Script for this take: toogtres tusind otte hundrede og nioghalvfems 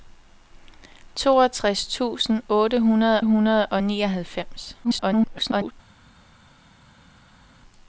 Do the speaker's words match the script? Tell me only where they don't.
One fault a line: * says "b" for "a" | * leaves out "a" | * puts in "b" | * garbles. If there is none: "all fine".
* puts in "hundrede"
* garbles